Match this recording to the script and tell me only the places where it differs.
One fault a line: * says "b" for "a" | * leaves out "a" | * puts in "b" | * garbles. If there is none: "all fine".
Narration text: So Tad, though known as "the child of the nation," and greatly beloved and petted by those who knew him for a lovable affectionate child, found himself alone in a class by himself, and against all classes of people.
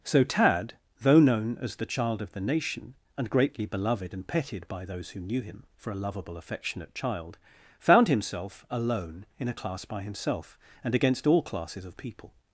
all fine